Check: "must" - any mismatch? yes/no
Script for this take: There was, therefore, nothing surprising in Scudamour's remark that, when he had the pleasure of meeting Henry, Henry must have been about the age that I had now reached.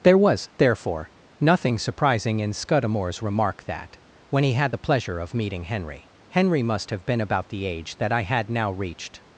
no